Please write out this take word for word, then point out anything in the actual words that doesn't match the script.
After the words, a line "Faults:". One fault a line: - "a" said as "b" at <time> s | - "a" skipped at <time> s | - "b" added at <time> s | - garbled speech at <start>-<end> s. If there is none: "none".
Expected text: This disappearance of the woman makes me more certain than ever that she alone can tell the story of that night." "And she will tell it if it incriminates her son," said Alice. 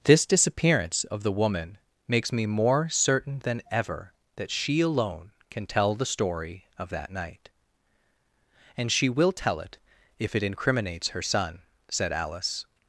This disappearance of the woman makes me more certain than ever that she alone can tell the story of that night." "And she will tell it if it incriminates her son," said Alice.
Faults:
none